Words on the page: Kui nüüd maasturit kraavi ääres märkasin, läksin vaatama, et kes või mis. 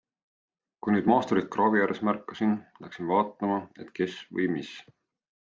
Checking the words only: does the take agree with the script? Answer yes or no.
yes